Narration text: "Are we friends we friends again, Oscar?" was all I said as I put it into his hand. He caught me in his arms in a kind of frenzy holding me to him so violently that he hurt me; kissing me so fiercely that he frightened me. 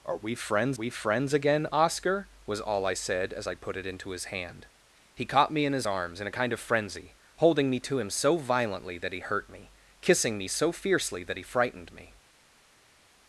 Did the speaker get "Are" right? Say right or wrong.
right